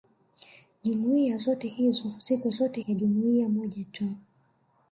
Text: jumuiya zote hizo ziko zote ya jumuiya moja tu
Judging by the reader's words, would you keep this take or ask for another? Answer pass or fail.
pass